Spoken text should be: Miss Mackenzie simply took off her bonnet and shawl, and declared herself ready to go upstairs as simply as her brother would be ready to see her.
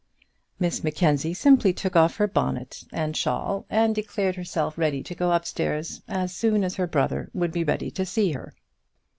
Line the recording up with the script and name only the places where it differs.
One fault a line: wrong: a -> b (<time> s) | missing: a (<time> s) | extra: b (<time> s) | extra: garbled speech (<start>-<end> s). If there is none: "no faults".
wrong: simply -> soon (6.3 s)